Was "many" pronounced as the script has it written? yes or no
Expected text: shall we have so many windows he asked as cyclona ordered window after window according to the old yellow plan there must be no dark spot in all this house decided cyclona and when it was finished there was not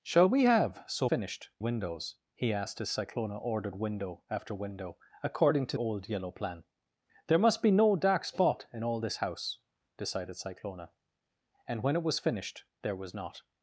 no